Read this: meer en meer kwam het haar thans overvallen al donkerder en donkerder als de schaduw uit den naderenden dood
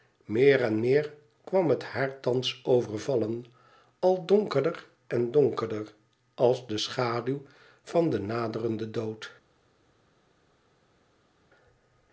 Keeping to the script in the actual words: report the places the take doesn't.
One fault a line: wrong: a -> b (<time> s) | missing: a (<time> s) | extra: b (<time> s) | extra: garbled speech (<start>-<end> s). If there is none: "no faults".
wrong: uit -> van (7.8 s)